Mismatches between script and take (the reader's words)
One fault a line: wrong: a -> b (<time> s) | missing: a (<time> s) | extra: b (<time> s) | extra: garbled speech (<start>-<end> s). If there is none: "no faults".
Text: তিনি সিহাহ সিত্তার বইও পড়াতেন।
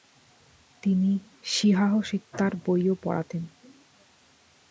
no faults